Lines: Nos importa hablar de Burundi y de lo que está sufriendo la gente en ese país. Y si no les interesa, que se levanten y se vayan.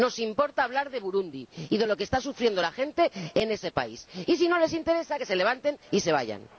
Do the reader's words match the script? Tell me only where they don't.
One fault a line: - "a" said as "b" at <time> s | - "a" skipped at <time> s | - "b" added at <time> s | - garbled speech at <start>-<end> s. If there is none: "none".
none